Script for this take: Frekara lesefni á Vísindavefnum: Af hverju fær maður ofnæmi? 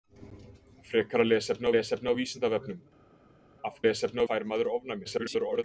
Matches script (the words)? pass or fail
fail